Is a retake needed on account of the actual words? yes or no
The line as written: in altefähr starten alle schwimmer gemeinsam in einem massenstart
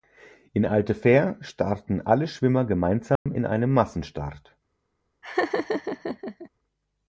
no